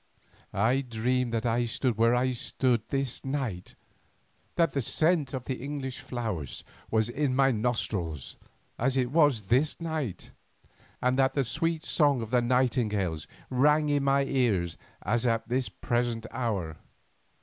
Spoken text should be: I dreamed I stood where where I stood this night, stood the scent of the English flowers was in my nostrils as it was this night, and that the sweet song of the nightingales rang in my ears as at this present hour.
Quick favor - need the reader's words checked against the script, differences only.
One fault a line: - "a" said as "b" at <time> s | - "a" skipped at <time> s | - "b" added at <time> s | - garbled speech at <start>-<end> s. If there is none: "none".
- "that" added at 1.3 s
- "where" skipped at 2.1 s
- "stood" said as "that" at 4.5 s